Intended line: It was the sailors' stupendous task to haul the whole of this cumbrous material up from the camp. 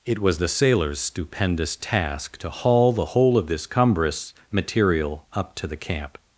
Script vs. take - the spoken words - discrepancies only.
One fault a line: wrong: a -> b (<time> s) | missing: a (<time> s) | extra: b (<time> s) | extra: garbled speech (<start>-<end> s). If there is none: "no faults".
wrong: from -> to (5.6 s)